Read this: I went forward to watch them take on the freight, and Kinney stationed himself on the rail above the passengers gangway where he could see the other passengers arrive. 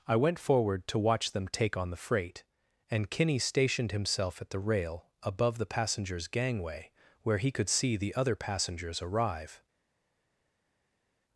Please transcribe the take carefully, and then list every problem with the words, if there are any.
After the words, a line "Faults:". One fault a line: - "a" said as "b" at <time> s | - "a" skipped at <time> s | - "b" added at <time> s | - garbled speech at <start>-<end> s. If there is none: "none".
I went forward to watch them take on the freight, and Kinney stationed himself at the rail above the passengers gangway where he could see the other passengers arrive.
Faults:
- "on" said as "at" at 4.4 s